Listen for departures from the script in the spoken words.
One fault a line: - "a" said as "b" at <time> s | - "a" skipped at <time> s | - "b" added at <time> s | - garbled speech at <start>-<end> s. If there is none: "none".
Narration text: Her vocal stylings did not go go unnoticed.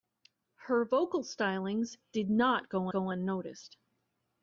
none